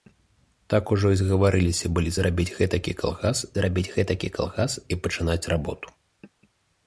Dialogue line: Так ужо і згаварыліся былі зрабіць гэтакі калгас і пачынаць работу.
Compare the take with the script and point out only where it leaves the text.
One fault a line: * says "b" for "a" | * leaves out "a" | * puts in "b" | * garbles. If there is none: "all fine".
* puts in "зрабіць гэтакі калгас"